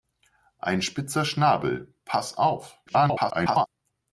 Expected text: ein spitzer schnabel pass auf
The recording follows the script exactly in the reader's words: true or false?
false